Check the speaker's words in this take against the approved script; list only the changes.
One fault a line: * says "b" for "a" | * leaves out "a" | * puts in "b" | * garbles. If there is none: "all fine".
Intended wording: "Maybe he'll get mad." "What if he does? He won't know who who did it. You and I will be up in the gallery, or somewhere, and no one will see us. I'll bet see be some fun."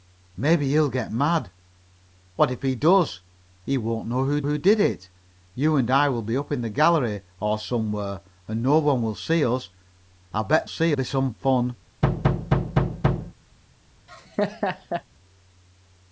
all fine